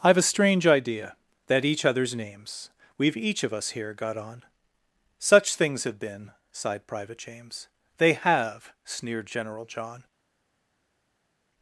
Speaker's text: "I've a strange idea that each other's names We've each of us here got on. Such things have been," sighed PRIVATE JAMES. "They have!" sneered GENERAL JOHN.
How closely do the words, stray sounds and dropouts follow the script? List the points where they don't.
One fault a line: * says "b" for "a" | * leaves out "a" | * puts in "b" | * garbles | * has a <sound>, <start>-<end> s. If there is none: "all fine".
all fine